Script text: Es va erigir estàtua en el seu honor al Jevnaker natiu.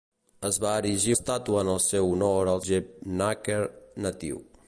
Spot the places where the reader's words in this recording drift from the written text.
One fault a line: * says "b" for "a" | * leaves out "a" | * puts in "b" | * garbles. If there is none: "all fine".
all fine